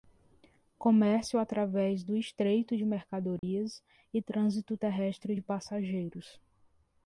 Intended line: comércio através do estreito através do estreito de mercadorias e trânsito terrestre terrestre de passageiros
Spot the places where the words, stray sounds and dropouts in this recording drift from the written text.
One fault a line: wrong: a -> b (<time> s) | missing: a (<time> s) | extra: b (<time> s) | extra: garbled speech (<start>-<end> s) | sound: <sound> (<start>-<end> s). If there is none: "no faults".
missing: através do estreito (2.8 s)
sound: dropout (3.4-3.4 s)
missing: terrestre (5.3 s)